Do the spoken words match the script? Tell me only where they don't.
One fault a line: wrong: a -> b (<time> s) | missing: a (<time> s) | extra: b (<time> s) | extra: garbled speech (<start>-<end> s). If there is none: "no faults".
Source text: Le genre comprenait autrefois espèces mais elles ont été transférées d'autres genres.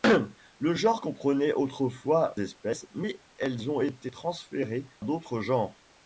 no faults